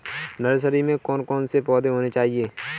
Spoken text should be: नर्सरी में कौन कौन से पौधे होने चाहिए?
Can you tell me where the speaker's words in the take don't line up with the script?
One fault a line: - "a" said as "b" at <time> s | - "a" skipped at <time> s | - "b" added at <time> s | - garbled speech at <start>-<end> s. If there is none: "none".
none